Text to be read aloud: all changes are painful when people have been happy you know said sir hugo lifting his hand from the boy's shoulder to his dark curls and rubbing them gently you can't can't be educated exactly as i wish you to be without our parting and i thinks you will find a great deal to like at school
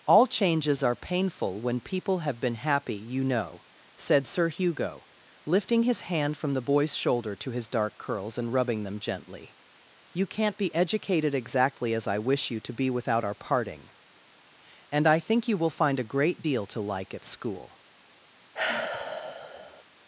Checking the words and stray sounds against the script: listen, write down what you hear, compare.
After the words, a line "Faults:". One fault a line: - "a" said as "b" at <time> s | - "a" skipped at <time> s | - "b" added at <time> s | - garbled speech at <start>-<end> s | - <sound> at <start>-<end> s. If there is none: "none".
all changes are painful when people have been happy you know said sir hugo lifting his hand from the boy's shoulder to his dark curls and rubbing them gently you can't be educated exactly as i wish you to be without our parting and i think you will find a great deal to like at school
Faults:
- "can't" skipped at 10.6 s
- "thinks" said as "think" at 15.2 s
- sigh at 18.5-19.8 s